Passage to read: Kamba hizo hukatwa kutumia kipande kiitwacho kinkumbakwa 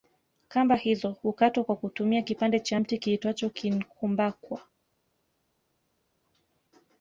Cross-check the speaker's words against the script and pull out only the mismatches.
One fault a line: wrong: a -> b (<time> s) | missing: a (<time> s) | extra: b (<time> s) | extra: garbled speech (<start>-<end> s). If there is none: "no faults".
extra: kwa (1.6 s)
extra: cha mti (2.6 s)